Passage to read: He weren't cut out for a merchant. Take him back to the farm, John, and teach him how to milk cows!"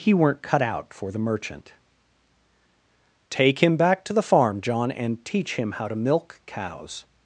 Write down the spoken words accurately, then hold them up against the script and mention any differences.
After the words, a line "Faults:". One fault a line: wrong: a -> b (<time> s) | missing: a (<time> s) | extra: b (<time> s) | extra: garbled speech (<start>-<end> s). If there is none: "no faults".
He weren't cut out for the merchant. Take him back to the farm, John, and teach him how to milk cows!"
Faults:
wrong: a -> the (1.1 s)